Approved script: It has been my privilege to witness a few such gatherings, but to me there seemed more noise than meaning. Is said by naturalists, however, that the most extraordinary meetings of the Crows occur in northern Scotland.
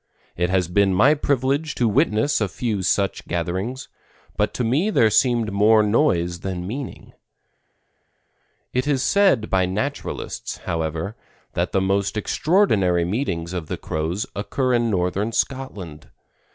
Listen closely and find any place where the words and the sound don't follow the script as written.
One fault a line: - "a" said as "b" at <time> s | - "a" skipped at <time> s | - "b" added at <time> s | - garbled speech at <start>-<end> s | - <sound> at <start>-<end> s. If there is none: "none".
- "It" added at 8.7 s